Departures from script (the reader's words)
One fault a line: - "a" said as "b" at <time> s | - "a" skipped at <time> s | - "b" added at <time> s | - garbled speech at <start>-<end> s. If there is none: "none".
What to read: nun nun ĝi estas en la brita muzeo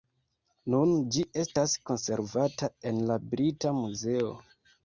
- "nun" skipped at 0.9 s
- "konservata" added at 1.9 s